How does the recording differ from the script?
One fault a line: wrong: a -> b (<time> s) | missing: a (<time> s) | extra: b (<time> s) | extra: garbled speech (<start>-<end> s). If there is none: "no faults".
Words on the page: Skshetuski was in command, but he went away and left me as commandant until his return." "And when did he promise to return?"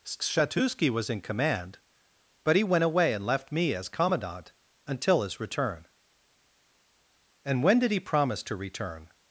no faults